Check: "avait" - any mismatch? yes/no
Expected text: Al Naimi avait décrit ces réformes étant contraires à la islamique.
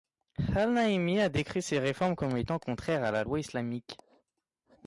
yes